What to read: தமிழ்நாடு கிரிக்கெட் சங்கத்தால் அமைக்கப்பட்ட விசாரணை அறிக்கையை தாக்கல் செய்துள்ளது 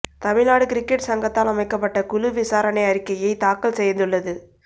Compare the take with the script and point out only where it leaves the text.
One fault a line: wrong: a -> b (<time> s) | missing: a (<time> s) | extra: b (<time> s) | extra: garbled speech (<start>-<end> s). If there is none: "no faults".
extra: குழு (2.0 s)